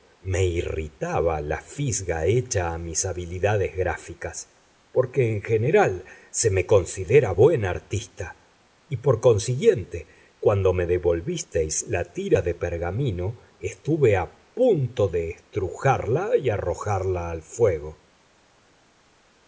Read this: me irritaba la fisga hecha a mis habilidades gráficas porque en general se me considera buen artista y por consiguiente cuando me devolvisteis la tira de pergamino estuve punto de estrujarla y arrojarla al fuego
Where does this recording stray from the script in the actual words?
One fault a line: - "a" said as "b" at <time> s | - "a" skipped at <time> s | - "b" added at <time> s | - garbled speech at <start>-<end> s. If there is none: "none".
- "a" added at 14.2 s